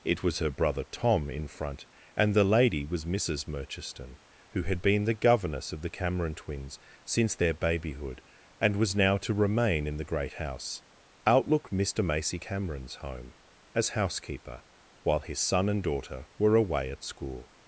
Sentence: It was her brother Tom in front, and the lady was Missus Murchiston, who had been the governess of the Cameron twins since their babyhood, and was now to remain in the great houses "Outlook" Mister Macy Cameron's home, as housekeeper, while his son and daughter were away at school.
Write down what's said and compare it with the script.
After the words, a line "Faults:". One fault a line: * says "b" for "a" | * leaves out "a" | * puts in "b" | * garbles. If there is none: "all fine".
It was her brother Tom in front, and the lady was Missus Murchiston, who had been the governess of the Cameron twins since their babyhood, and was now to remain in the great house "Outlook" Mister Macy Cameron's home, as housekeeper, while his son and daughter were away at school.
Faults:
* says "house" for "houses"